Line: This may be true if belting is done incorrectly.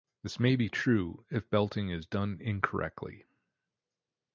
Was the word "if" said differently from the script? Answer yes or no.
no